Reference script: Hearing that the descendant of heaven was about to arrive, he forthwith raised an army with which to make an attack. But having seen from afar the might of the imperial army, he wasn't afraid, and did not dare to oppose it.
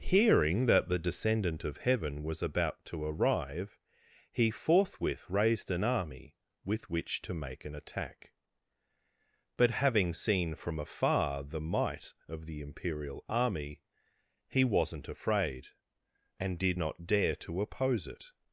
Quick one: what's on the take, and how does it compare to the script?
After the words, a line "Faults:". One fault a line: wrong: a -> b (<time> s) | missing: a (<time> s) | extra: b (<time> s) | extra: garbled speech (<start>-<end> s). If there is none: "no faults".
Hearing that the descendant of heaven was about to arrive, he forthwith raised an army with which to make an attack. But having seen from afar the might of the imperial army, he wasn't afraid, and did not dare to oppose it.
Faults:
no faults